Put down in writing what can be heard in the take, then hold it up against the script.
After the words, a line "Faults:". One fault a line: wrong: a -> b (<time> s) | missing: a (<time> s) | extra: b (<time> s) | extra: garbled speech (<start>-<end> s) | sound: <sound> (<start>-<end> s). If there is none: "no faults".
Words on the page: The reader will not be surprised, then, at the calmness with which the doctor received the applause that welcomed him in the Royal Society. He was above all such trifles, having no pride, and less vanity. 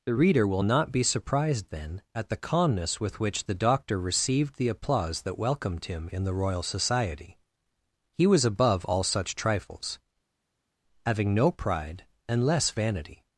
The reader will not be surprised, then, at the calmness with which the doctor received the applause that welcomed him in the Royal Society. He was above all such trifles, having no pride, and less vanity.
Faults:
no faults